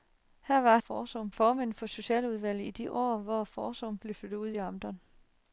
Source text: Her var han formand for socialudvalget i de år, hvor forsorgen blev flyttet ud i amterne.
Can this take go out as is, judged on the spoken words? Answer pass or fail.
fail